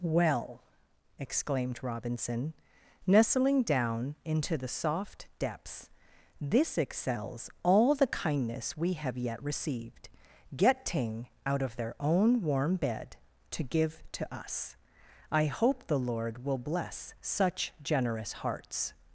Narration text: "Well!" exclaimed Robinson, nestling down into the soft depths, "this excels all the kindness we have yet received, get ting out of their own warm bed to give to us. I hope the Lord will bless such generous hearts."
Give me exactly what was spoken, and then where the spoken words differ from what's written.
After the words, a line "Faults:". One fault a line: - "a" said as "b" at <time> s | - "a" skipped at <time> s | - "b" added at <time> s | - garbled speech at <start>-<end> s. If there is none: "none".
"Well!" exclaimed Robinson, nestling down into the soft depths, "this excels all the kindness we have yet received, get ting out of their own warm bed to give to us. I hope the Lord will bless such generous hearts."
Faults:
none